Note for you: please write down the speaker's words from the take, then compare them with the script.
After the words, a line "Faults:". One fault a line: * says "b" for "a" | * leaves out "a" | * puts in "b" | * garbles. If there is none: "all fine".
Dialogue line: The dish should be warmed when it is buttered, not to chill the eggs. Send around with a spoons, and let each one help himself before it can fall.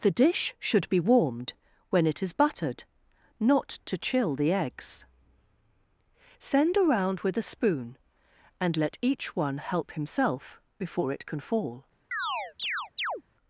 The dish should be warmed when it is buttered, not to chill the eggs. Send around with a spoon, and let each one help himself before it can fall.
Faults:
* says "spoon" for "spoons"